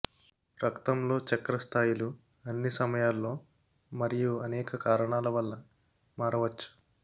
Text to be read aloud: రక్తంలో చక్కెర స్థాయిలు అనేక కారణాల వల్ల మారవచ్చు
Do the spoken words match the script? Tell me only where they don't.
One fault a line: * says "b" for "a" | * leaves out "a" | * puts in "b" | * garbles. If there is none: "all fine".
* puts in "అన్ని సమయాల్లో మరియు"